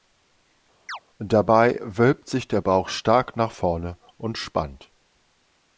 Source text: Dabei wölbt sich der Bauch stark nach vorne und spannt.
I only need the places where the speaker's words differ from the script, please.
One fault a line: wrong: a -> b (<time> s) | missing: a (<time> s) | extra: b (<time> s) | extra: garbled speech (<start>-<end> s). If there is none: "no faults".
no faults